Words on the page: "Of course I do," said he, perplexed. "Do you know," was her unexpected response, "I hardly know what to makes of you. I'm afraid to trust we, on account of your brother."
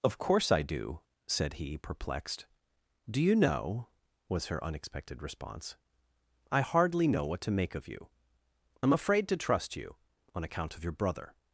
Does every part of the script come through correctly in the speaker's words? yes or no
no